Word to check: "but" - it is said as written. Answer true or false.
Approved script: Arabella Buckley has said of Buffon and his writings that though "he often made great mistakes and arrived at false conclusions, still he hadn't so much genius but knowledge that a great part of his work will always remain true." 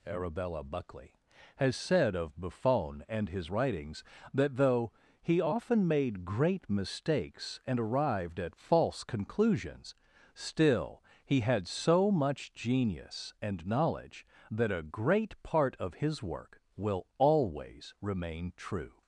false